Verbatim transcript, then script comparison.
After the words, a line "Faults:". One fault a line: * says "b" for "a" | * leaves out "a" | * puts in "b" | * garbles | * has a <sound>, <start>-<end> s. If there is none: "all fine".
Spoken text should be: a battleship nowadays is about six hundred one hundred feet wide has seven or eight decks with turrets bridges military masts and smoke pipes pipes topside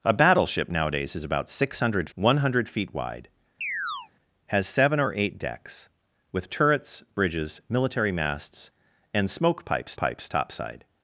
a battleship nowadays is about six hundred one hundred feet wide has seven or eight decks with turrets bridges military masts and smoke pipes pipes topside
Faults:
* has a chirp, 3.6-4.1 s